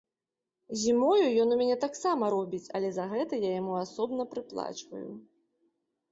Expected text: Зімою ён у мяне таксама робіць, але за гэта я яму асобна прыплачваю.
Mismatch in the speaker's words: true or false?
false